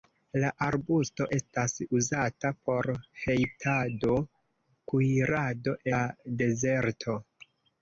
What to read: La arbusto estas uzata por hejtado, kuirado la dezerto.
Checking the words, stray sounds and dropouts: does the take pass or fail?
pass